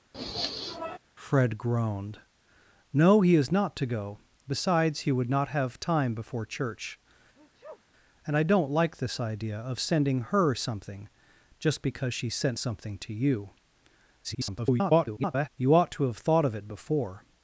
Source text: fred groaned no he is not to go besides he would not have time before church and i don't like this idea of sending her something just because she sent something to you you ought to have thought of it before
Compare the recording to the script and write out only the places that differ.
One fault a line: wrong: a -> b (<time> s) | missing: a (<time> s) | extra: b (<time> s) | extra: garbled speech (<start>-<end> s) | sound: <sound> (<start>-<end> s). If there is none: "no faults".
sound: sniff (0.1-1.0 s)
sound: sneeze (7.4-7.8 s)
extra: garbled speech (14.2-15.5 s)